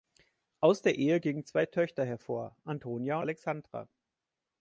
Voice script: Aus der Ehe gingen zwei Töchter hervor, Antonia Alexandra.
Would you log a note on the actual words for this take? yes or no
no